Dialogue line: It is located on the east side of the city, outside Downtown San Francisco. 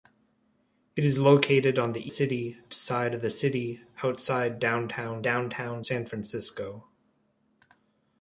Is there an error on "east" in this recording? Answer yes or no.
yes